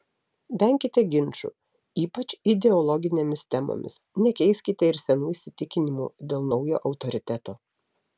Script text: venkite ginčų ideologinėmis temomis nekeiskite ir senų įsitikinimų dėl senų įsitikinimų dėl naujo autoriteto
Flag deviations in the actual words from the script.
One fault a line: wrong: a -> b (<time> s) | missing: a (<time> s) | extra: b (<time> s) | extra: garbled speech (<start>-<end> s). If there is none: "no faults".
extra: ypač (2.0 s)
missing: senų įsitikinimų dėl (6.5 s)